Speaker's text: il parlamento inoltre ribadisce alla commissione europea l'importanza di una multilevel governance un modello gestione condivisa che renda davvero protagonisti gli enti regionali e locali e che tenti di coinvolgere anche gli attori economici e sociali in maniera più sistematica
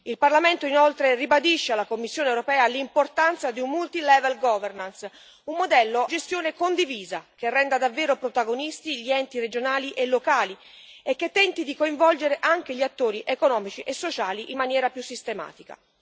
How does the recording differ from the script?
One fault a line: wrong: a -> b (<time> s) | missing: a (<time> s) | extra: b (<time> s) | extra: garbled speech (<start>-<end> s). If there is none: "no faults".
no faults